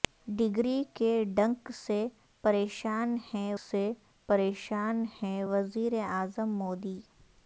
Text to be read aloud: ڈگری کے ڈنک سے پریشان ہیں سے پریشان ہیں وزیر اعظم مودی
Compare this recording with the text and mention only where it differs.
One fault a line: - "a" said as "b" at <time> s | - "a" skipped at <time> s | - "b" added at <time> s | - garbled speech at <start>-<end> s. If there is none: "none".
none